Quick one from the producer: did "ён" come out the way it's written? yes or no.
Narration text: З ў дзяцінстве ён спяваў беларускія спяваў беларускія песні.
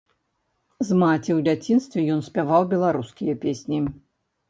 yes